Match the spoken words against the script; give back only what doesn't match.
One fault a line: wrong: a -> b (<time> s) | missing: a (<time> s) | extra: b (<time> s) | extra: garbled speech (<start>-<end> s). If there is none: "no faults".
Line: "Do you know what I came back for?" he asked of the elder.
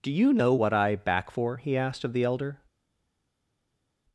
missing: came (0.9 s)